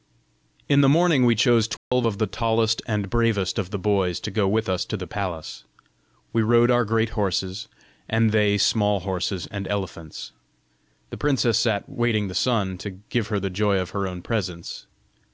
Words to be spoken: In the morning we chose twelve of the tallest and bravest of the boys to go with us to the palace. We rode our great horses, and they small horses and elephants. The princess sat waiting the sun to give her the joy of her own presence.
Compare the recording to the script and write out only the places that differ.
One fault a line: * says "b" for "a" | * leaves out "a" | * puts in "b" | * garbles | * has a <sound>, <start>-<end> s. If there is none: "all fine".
* has a dropout, 1.8-1.9 s